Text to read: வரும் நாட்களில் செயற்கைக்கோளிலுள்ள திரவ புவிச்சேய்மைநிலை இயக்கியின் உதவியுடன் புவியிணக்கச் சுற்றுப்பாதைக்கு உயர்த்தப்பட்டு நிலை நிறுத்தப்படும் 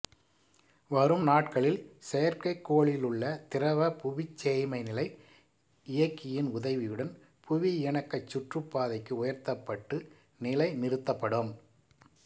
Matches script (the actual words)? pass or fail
pass